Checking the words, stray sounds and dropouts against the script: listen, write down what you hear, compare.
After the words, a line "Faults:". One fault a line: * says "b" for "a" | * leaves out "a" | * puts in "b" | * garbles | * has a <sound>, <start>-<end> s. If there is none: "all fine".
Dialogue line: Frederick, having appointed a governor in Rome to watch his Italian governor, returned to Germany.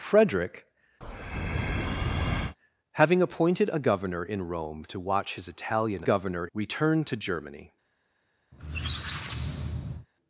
Frederick, having appointed a governor in Rome to watch his Italian governor, returned to Germany.
Faults:
* has a breath, 1.0-2.6 s
* has a squeak, 8.5-10.1 s